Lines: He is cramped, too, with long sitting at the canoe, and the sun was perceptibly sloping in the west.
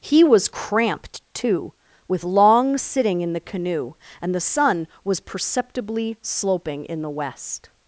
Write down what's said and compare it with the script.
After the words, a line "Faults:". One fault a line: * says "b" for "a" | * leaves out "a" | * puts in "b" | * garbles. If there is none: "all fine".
He was cramped, too, with long sitting in the canoe, and the sun was perceptibly sloping in the west.
Faults:
* says "was" for "is"
* says "in" for "at"